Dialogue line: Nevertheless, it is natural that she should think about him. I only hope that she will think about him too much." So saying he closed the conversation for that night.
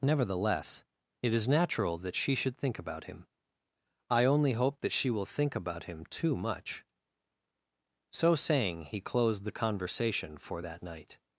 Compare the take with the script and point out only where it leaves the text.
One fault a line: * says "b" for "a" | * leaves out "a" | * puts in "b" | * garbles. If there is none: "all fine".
all fine